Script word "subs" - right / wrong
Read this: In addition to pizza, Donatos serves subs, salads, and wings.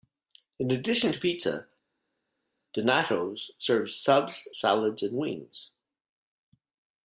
right